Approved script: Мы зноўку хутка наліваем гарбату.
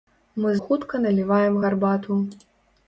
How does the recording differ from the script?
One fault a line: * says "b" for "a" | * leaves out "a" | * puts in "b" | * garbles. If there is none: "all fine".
* leaves out "зноўку"